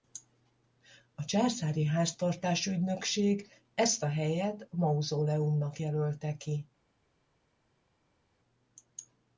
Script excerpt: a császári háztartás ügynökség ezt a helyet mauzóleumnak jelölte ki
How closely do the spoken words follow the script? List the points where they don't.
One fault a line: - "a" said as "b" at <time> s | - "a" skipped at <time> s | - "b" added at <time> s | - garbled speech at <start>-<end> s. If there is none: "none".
none